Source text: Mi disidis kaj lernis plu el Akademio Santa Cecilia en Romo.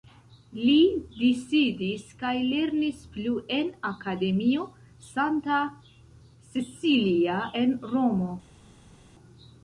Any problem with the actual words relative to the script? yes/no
yes